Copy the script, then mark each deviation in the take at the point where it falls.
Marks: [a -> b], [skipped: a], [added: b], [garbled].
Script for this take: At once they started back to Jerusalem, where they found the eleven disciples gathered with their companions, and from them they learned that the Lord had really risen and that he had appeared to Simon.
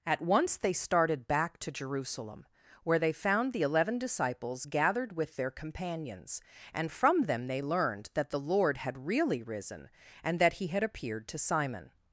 At once they started back to Jerusalem, where they found the eleven disciples gathered with their companions, and from them they learned that the Lord had really risen and that he had appeared to Simon.